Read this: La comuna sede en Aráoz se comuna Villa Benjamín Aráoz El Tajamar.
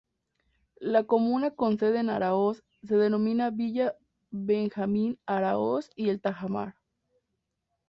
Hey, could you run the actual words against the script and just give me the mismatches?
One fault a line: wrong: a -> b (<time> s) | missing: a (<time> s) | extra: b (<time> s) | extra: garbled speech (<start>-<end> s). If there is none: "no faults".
extra: con (1.5 s)
wrong: comuna -> denomina (3.0 s)
extra: y (6.0 s)